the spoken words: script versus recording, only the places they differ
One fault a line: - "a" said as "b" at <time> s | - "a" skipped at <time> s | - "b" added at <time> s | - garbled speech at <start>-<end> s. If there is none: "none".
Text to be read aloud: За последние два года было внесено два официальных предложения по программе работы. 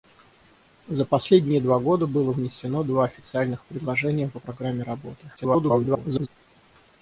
- garbled speech at 5.4-6.3 s